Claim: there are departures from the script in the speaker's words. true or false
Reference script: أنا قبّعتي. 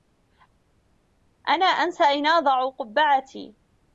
true